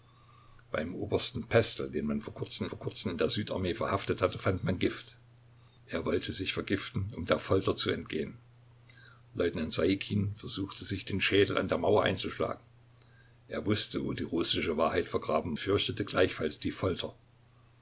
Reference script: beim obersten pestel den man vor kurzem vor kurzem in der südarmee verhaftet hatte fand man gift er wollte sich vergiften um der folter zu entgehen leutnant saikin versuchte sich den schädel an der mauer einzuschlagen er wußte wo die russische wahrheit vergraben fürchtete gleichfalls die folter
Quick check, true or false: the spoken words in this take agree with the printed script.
true